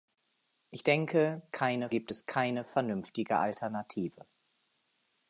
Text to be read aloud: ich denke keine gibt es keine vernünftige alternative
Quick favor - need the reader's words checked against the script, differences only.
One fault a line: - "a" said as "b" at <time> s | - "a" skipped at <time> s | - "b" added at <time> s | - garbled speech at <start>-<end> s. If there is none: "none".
none